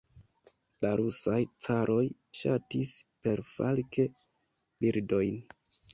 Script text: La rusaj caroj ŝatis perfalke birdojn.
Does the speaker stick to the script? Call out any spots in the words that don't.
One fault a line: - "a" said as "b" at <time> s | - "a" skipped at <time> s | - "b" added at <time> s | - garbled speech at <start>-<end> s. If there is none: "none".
none